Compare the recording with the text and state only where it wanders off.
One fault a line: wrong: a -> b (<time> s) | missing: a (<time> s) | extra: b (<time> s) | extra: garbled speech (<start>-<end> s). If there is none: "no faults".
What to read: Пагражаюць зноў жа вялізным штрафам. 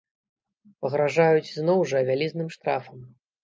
no faults